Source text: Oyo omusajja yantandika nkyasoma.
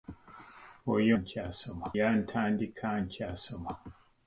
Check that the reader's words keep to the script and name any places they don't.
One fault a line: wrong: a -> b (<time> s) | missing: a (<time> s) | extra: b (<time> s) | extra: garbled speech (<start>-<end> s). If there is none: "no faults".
wrong: omusajja -> nkyasoma (1.2 s)